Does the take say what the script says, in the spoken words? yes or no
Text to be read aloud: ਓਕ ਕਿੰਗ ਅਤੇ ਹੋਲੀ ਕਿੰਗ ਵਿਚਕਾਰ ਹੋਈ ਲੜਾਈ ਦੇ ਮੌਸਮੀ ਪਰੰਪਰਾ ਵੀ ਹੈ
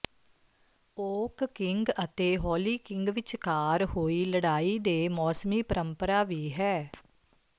yes